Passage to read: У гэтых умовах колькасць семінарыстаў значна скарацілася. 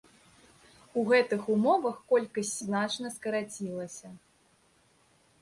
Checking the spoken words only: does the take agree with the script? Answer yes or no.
no